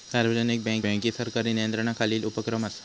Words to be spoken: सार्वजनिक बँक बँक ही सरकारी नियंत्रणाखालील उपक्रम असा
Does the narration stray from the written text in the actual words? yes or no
no